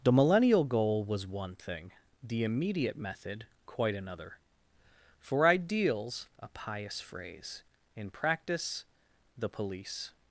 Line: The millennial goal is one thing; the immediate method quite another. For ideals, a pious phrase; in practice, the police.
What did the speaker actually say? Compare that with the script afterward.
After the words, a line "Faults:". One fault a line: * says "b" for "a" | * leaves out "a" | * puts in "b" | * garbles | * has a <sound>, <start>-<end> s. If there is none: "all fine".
The millennial goal was one thing; the immediate method quite another. For ideals, a pious phrase; in practice, the police.
Faults:
* says "was" for "is"